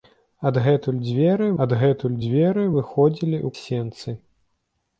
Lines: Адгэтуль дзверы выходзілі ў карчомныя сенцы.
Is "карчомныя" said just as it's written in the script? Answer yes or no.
no